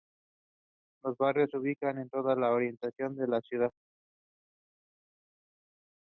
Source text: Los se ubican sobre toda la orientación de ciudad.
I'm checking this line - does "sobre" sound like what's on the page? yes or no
no